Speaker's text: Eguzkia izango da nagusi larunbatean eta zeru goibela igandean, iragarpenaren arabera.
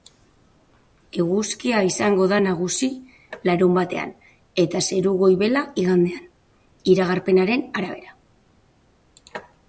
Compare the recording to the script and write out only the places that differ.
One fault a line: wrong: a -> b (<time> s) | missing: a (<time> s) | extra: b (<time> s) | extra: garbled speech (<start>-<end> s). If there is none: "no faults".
no faults